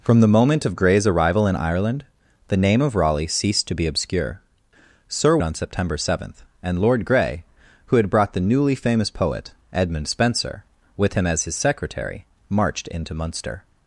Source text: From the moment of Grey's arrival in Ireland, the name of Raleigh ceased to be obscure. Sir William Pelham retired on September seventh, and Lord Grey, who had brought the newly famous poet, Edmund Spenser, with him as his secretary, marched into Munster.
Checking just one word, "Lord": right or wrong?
right